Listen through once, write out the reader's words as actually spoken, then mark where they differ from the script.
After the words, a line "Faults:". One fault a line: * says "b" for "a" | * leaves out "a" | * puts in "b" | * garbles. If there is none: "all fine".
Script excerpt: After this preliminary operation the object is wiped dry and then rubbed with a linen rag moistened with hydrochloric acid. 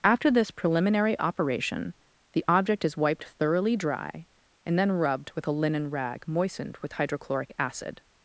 After this preliminary operation the object is wiped thoroughly dry and then rubbed with a linen rag moistened with hydrochloric acid.
Faults:
* puts in "thoroughly"